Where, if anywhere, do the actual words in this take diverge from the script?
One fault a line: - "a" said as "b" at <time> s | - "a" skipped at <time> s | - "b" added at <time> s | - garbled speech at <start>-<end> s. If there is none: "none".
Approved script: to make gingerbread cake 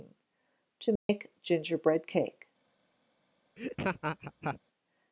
none